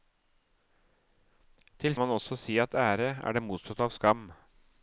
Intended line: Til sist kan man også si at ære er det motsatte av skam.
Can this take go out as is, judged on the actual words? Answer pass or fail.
fail